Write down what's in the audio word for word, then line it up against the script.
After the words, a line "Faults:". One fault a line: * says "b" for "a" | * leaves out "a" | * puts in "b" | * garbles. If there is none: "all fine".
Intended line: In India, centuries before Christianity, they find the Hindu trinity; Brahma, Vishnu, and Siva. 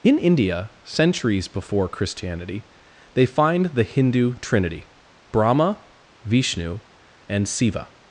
In India, centuries before Christianity, they find the Hindu trinity; Brahma, Vishnu, and Siva.
Faults:
all fine